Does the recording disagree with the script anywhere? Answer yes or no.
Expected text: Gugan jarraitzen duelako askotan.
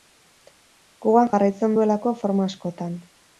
yes